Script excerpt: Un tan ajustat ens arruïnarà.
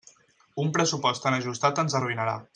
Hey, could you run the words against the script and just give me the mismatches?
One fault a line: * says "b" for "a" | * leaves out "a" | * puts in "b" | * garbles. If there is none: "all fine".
* puts in "pressupost"